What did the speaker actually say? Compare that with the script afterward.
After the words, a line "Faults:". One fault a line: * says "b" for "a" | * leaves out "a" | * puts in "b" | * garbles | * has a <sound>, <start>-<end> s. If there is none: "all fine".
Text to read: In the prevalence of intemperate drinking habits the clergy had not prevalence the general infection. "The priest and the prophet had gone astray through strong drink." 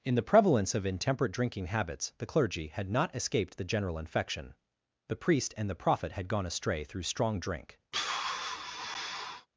In the prevalence of intemperate drinking habits the clergy had not escaped the general infection. "The priest and the prophet had gone astray through strong drink."
Faults:
* says "escaped" for "prevalence"
* has a sigh, 7.9-9.5 s